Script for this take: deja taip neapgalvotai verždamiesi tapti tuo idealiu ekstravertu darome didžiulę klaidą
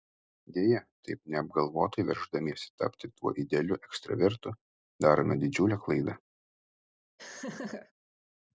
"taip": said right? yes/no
yes